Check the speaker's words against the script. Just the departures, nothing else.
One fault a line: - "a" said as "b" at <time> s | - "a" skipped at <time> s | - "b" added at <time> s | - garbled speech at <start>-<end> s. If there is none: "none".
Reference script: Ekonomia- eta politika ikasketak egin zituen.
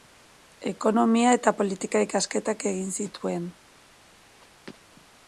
none